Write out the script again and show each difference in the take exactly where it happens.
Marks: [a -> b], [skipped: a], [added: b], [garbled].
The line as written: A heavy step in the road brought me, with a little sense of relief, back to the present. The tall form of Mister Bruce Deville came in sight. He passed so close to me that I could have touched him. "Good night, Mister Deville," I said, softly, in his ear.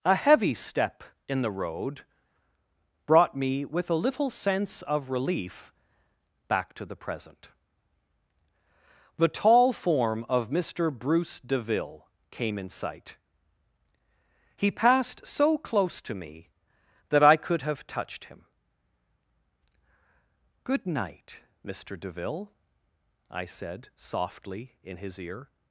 A heavy step in the road brought me, with a little sense of relief, back to the present. The tall form of Mister Bruce Deville came in sight. He passed so close to me that I could have touched him. "Good night, Mister Deville," I said, softly, in his ear.